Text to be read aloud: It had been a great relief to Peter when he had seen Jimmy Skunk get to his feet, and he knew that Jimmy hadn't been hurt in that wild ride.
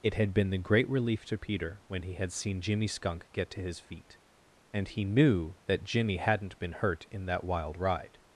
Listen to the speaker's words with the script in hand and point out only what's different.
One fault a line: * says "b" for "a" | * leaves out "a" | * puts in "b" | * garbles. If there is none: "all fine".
* says "the" for "a"